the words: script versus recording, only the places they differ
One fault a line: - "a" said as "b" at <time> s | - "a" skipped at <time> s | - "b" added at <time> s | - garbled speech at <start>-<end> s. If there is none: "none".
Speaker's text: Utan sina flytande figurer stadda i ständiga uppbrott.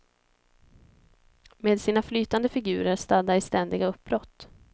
- "Utan" said as "Med" at 1.6 s